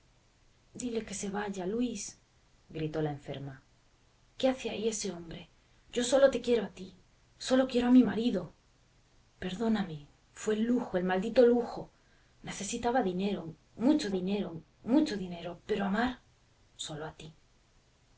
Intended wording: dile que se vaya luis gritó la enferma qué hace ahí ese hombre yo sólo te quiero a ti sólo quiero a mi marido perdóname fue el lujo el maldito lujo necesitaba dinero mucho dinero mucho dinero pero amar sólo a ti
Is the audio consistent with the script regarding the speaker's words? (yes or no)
yes